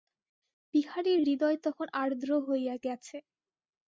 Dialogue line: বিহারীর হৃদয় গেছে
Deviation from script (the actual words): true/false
true